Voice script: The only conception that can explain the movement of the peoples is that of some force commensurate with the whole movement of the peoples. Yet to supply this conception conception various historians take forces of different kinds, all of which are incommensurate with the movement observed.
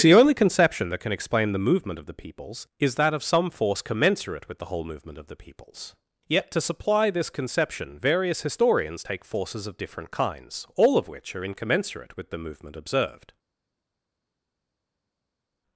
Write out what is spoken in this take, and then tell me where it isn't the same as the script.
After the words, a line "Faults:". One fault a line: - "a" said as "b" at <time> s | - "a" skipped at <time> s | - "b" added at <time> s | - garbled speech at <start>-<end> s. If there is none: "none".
The only conception that can explain the movement of the peoples is that of some force commensurate with the whole movement of the peoples. Yet to supply this conception various historians take forces of different kinds, all of which are incommensurate with the movement observed.
Faults:
- "conception" skipped at 8.0 s